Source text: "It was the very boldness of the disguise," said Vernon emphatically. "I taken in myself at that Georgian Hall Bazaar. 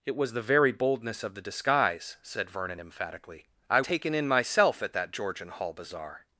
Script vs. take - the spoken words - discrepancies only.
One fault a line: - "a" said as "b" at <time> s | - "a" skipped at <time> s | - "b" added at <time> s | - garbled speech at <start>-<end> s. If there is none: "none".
none